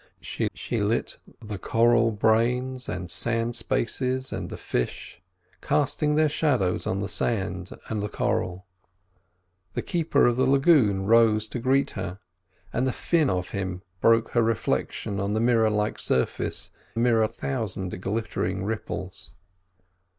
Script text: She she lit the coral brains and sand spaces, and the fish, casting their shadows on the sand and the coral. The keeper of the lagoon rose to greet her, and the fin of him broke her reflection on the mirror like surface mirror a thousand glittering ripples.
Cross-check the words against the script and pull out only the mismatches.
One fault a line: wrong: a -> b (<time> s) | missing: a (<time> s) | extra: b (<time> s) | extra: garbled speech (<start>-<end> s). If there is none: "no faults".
no faults